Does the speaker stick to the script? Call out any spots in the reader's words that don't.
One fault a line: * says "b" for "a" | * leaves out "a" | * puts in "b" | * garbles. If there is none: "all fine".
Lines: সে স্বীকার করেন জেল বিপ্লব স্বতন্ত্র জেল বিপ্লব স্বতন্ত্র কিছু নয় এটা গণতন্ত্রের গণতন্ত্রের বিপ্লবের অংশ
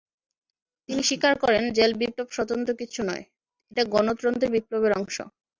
* says "তিনি" for "সে"
* leaves out "জেল বিপ্লব স্বতন্ত্র"
* leaves out "গণতন্ত্রের"